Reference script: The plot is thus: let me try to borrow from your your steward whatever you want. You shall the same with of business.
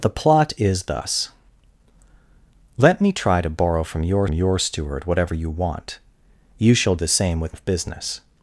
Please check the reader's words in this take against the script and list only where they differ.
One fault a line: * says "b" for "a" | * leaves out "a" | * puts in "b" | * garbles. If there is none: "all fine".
all fine